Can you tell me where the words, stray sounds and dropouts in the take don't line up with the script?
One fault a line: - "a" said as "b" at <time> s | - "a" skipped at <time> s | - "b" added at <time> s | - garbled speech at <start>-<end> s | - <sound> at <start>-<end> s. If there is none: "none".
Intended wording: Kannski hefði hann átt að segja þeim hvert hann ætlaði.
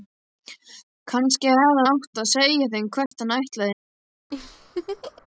- "hann" skipped at 1.8 s
- dropout at 3.1-3.1 s
- laugh at 4.3-5.3 s